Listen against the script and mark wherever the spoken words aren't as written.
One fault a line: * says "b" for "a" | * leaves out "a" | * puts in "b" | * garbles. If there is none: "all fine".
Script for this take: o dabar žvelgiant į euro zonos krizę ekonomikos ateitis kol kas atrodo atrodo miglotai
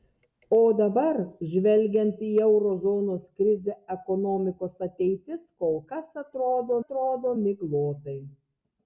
all fine